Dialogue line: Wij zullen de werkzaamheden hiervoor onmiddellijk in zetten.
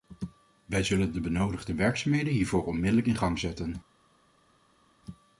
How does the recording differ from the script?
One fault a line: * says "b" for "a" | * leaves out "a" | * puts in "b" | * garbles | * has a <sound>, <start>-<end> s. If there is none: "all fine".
* puts in "benodigde"
* puts in "gang"